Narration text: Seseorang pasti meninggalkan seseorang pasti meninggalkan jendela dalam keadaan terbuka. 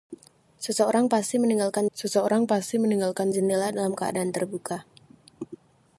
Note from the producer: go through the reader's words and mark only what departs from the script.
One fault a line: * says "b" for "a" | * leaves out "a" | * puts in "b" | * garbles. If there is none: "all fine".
all fine